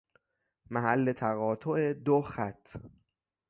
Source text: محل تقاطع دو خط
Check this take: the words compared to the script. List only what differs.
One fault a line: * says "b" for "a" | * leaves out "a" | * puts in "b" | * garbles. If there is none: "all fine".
all fine